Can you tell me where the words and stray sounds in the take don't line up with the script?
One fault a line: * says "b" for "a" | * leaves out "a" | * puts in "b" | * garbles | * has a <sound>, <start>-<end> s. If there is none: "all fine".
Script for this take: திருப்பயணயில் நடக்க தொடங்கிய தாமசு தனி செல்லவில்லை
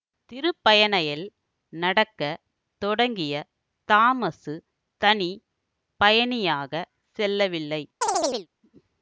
* puts in "பயணியாகச்"
* has a chirp, 8.0-8.5 s